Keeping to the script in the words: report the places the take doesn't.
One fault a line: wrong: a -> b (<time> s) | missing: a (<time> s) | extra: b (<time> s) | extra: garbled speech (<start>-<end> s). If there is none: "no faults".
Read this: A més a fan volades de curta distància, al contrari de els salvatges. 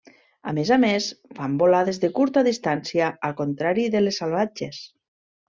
extra: més (0.8 s)
wrong: els -> les (4.1 s)